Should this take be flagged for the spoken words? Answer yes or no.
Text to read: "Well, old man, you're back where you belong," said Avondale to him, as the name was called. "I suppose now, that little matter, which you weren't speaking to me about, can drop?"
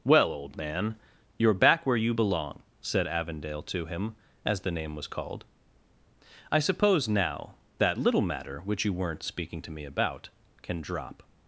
no